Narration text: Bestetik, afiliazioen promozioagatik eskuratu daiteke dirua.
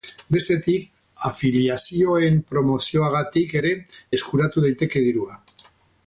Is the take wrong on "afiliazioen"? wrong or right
right